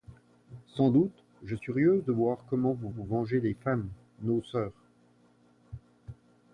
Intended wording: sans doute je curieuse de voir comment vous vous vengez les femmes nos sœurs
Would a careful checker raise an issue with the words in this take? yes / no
no